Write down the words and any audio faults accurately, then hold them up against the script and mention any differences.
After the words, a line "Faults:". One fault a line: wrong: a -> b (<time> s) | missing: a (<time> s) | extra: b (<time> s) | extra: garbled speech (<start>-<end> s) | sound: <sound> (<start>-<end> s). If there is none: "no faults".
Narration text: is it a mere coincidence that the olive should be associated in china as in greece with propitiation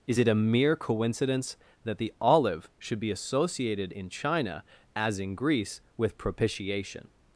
is it a mere coincidence that the olive should be associated in china as in greece with propitiation
Faults:
no faults